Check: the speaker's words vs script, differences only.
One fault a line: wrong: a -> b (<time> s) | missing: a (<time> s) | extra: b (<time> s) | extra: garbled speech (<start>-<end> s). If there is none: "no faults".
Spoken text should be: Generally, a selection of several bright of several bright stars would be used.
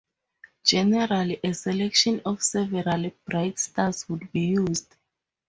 missing: of several bright (3.6 s)